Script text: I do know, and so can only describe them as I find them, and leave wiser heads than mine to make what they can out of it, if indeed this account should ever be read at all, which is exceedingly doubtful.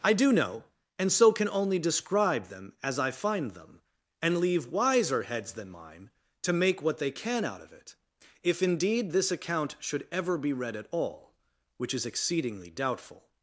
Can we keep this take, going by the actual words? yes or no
yes